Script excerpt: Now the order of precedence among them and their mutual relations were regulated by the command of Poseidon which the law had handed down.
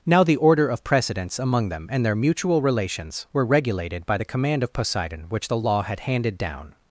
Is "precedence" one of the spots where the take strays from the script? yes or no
no